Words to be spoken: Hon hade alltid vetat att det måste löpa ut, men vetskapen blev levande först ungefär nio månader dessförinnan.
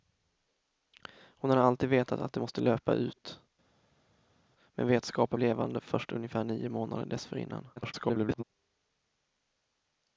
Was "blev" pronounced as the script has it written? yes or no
no